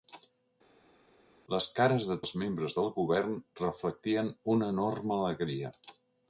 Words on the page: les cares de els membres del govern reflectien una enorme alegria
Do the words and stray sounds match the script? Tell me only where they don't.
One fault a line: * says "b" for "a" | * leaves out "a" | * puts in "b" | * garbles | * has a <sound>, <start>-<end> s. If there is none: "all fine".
all fine